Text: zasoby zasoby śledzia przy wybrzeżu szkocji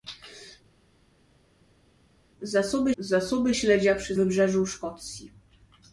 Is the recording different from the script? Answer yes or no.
no